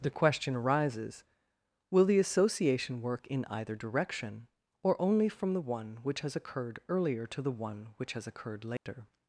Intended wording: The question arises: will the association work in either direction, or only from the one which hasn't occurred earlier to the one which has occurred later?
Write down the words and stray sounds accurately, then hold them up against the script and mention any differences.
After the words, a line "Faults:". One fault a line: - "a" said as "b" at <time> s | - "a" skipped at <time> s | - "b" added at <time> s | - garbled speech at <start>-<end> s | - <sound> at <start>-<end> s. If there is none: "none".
The question arises: will the association work in either direction, or only from the one which has occurred earlier to the one which has occurred later?
Faults:
- "hasn't" said as "has" at 6.2 s
- dropout at 8.8-8.9 s